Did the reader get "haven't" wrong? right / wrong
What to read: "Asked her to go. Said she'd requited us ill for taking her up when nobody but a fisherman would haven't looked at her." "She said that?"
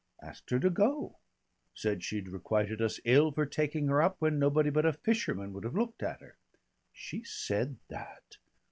wrong